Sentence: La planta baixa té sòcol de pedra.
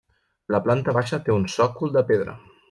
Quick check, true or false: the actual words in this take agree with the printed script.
false